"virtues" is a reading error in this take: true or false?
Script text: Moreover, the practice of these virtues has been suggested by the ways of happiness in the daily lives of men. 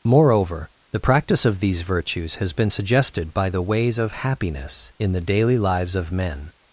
false